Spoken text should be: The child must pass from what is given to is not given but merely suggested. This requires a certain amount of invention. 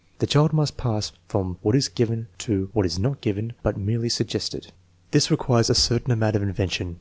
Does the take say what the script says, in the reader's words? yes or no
no